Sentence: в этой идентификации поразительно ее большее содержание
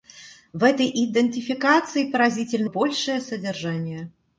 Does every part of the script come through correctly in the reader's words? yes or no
no